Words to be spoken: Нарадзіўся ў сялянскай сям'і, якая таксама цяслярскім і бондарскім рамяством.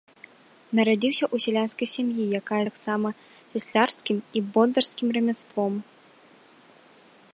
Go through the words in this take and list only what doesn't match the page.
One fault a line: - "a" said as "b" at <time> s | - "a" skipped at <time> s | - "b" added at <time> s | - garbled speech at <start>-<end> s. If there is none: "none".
none